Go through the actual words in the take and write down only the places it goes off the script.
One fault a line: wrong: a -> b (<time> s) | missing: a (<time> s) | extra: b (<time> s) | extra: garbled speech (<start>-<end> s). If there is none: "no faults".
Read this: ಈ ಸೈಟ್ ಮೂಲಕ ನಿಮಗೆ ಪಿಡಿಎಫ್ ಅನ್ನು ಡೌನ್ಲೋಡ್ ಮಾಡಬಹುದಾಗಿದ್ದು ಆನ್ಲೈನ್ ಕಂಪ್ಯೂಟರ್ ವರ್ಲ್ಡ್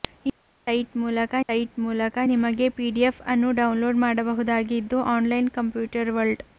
extra: ಸೈಟ್ ಮೂಲಕ (1.5 s)